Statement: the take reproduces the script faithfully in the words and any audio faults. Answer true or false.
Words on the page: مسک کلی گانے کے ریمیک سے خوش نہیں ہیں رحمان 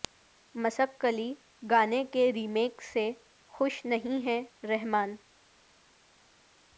true